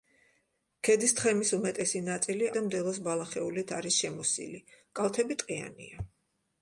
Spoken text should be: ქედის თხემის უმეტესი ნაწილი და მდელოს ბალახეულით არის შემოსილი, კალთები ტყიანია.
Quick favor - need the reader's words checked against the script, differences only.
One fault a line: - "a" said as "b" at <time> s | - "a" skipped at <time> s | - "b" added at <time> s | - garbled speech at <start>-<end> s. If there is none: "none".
none